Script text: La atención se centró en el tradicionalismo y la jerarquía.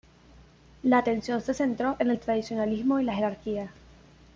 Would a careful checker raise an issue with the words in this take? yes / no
no